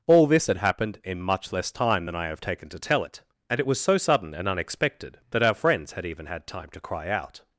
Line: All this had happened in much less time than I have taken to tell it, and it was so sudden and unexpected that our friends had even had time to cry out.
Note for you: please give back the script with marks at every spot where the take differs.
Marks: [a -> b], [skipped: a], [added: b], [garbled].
All this had happened in much less time than I have taken to tell it, and it was so sudden and unexpected that our friends had even had time to cry out.